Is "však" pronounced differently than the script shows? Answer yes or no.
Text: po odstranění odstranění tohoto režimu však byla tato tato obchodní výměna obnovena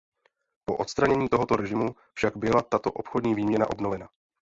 no